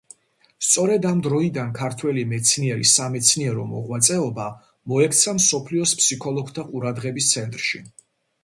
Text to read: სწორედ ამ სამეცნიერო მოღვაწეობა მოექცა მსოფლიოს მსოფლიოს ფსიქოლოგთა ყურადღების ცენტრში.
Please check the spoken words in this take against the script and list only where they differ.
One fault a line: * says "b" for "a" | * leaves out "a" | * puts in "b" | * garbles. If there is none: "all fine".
* puts in "დროიდან ქართველი მეცნიერის"
* leaves out "მსოფლიოს"